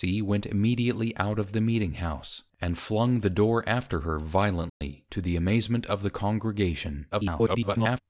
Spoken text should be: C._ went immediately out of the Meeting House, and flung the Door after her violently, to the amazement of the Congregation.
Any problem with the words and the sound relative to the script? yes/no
yes